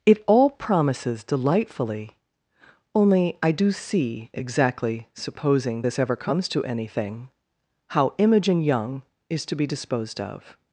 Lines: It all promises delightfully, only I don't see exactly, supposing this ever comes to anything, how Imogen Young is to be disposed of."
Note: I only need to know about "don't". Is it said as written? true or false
false